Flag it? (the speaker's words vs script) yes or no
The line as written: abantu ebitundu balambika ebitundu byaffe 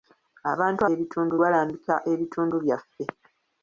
no